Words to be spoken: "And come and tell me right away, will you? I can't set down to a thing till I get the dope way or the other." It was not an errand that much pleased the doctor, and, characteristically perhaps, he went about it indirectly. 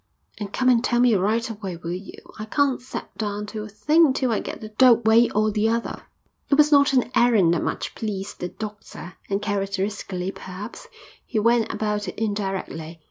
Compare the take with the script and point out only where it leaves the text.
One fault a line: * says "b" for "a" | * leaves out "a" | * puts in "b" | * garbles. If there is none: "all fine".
all fine